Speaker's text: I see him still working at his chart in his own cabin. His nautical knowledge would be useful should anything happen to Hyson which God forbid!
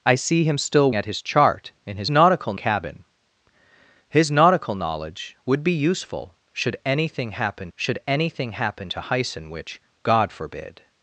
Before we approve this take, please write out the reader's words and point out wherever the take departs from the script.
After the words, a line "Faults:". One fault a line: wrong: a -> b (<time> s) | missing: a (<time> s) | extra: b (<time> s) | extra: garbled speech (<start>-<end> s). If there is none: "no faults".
I see him still at his chart in his nautical cabin. His nautical knowledge would be useful should anything happen should anything happen to Hyson which God forbid!
Faults:
missing: working (0.9 s)
wrong: own -> nautical (2.1 s)
extra: should anything happen (7.8 s)